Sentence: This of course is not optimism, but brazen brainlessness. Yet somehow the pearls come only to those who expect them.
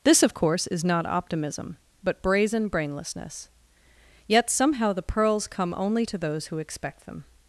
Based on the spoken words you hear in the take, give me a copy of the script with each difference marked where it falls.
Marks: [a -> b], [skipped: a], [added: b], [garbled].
This of course is not optimism, but brazen brainlessness. Yet somehow the pearls come only to those who expect them.